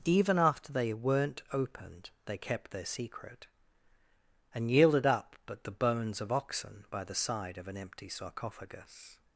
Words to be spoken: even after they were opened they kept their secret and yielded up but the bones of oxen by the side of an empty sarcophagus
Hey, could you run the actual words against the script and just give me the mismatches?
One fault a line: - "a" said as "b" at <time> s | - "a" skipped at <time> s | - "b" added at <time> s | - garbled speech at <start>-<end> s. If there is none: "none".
- "were" said as "weren't" at 0.9 s